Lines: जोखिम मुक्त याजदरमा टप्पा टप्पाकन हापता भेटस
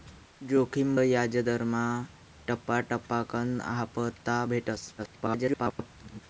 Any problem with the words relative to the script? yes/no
yes